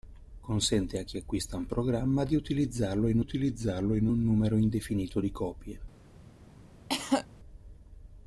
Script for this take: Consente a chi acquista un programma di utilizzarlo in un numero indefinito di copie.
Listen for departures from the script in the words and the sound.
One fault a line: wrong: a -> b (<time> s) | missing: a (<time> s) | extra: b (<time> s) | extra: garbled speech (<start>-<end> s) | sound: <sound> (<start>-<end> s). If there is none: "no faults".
extra: utilizzarlo in (3.2 s)
sound: cough (6.9-7.3 s)